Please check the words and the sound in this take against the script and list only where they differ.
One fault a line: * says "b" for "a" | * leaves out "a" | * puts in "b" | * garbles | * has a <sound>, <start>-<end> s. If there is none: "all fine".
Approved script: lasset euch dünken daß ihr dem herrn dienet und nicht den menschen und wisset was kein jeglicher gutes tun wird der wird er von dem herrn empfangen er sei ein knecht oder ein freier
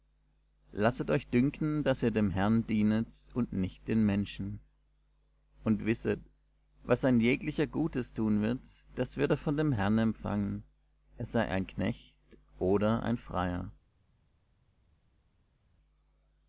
* says "ein" for "kein"
* says "das" for "der"